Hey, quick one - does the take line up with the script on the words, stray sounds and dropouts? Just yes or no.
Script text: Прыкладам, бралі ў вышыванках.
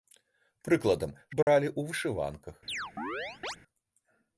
no